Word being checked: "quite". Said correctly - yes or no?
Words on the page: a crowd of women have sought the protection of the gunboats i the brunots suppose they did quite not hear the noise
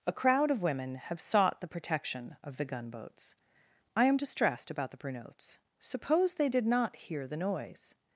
no